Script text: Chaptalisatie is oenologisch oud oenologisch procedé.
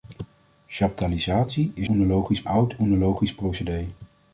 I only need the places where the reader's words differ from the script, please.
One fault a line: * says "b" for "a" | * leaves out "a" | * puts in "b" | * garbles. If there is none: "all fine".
all fine